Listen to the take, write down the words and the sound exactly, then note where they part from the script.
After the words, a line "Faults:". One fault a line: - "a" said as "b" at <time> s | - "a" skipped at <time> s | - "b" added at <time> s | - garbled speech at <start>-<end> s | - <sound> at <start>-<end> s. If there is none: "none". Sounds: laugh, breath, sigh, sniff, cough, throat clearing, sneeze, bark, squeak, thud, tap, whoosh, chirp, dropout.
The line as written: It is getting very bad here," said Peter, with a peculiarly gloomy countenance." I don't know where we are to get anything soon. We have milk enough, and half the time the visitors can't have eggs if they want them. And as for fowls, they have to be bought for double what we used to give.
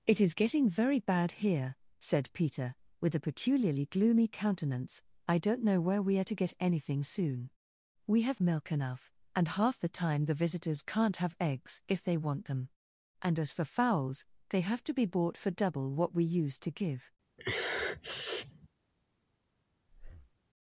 It is getting very bad here," said Peter, with a peculiarly gloomy countenance." I don't know where we are to get anything soon. We have milk enough, and half the time the visitors can't have eggs if they want them. And as for fowls, they have to be bought for double what we used to give.
Faults:
- sniff at 17.4-18.7 s
- breath at 19.9-20.4 s